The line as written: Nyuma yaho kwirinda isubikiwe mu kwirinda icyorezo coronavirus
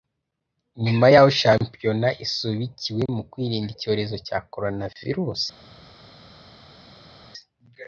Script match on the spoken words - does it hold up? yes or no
no